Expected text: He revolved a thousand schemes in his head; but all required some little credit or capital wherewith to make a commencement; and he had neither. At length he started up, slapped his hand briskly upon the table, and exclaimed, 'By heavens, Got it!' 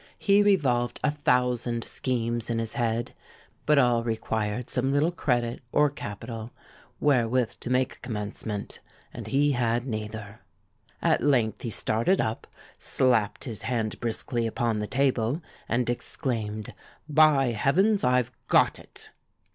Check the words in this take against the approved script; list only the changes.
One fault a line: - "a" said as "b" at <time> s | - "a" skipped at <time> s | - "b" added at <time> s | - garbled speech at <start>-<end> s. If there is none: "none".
- "I've" added at 18.0 s